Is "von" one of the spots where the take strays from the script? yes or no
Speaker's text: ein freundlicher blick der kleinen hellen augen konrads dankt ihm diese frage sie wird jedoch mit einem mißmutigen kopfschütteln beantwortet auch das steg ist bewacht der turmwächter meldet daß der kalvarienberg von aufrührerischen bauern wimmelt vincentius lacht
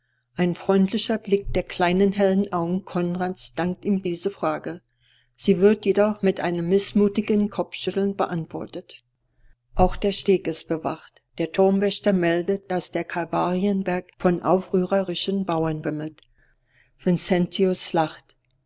no